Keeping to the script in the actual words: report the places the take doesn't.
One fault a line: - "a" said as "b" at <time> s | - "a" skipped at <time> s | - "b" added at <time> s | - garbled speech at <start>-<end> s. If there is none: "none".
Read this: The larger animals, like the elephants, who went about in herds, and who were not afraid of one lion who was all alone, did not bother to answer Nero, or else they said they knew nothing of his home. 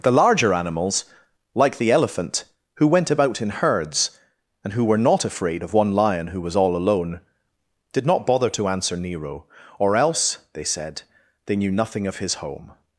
- "elephants" said as "elephant" at 1.9 s